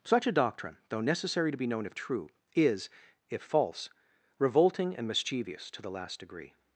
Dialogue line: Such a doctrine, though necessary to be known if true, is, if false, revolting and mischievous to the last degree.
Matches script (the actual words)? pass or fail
pass